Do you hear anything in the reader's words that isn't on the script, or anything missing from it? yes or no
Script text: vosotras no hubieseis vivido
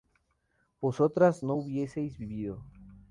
no